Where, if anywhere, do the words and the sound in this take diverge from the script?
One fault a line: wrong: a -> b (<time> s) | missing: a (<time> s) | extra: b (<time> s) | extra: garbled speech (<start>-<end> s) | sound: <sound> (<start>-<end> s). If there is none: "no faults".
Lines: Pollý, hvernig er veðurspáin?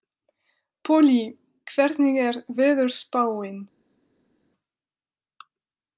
no faults